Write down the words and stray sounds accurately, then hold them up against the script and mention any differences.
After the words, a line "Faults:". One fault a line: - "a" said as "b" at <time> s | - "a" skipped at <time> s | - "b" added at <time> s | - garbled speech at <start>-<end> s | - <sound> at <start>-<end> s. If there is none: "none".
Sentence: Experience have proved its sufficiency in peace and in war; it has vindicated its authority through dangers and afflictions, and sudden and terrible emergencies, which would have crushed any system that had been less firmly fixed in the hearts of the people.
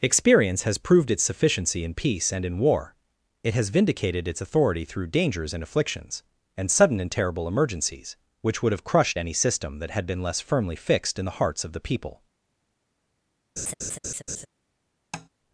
Experience has proved its sufficiency in peace and in war; it has vindicated its authority through dangers and afflictions, and sudden and terrible emergencies, which would have crushed any system that had been less firmly fixed in the hearts of the people.
Faults:
- "have" said as "has" at 0.6 s
- laugh at 13.6-14.5 s
- tap at 15.1-15.3 s